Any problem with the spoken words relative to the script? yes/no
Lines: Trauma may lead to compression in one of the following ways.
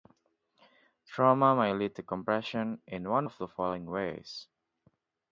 no